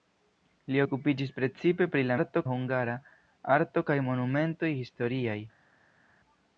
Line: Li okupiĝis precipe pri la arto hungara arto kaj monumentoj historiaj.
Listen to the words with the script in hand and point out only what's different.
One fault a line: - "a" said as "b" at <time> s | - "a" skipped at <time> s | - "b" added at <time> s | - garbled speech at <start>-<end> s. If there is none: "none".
none